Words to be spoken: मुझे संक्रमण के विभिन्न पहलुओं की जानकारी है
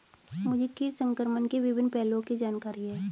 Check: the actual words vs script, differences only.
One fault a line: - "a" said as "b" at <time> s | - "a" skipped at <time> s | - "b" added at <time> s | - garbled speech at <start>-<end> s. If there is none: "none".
- "कीट" added at 0.8 s